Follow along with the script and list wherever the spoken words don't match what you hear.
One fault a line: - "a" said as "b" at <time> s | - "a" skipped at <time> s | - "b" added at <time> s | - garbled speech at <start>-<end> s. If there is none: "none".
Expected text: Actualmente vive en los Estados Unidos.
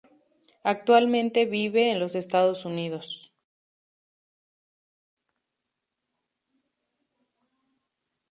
none